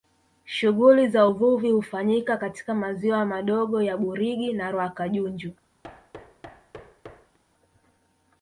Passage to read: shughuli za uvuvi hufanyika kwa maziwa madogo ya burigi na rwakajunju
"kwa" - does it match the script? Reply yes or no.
no